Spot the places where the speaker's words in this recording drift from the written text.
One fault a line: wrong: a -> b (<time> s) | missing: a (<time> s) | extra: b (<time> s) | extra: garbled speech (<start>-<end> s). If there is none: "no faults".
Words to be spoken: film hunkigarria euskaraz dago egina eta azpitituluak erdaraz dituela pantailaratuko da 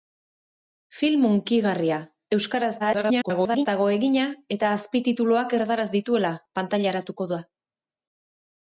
extra: garbled speech (2.8-3.7 s)